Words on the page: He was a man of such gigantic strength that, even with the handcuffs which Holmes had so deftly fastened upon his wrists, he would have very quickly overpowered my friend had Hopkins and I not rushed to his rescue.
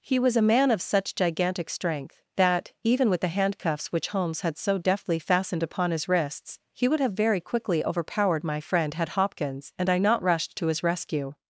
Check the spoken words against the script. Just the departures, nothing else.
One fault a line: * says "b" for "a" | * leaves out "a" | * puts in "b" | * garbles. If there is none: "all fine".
all fine